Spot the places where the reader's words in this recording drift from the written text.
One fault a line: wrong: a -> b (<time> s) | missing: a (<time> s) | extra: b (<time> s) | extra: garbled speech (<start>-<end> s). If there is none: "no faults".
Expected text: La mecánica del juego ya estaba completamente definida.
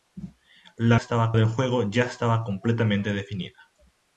wrong: mecánica -> estaba (0.9 s)